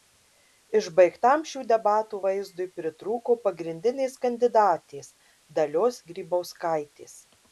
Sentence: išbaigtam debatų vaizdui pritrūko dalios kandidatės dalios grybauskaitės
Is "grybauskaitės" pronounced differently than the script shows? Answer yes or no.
no